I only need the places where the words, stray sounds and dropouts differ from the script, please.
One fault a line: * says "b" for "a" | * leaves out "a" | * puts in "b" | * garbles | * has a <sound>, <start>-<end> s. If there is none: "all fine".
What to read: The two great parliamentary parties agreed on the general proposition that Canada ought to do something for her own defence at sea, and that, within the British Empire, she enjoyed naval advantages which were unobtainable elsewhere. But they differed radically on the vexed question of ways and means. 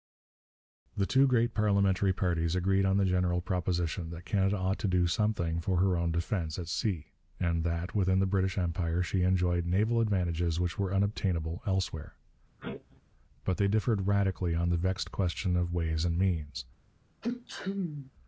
* has a sneeze, 12.6-13.0 s
* has a sneeze, 17.2-18.1 s